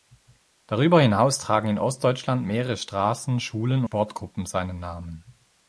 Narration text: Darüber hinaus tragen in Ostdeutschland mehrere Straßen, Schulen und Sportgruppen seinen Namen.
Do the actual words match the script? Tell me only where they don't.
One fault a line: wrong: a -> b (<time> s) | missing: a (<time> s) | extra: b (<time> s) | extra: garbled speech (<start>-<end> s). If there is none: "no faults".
missing: und (3.9 s)